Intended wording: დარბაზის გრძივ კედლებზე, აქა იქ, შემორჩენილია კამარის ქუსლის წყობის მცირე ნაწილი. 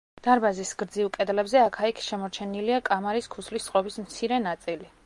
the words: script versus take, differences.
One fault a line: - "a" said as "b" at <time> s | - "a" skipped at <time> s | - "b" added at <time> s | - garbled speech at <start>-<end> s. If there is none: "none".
none